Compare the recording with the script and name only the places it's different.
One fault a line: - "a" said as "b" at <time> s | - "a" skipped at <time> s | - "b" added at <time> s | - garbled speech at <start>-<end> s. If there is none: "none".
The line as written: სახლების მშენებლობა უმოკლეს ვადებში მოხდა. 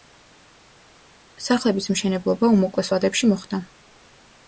none